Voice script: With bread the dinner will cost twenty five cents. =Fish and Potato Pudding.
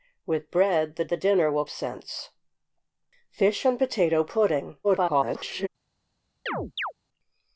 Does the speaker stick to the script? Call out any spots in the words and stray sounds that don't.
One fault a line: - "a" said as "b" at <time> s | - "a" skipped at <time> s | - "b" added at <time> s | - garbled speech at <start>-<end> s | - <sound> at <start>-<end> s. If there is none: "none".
- "the" added at 1.1 s
- "cost twenty five" skipped at 1.6 s
- garbled speech at 4.8-5.7 s
- chirp at 6.5-6.9 s